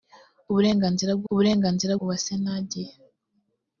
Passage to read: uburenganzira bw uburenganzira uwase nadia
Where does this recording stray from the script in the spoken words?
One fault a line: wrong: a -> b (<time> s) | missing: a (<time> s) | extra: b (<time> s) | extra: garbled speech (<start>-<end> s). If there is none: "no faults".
no faults